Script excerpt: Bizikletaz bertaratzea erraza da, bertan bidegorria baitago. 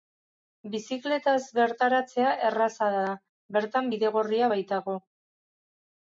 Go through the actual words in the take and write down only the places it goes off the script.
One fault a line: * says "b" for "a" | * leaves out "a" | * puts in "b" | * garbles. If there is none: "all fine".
all fine